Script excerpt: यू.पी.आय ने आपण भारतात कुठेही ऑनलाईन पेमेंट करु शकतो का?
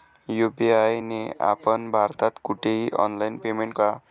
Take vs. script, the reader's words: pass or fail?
fail